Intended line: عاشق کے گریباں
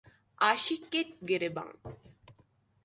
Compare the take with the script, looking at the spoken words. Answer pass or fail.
pass